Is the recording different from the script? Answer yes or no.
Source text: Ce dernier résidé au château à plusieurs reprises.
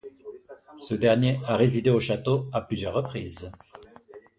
yes